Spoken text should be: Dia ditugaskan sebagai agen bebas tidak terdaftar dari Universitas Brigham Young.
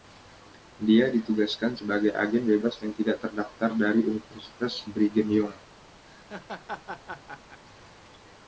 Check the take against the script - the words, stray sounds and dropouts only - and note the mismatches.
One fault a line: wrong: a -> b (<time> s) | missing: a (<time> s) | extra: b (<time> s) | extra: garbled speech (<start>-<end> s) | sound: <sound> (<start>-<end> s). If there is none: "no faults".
extra: yang (2.8 s)
sound: laugh (6.1-7.6 s)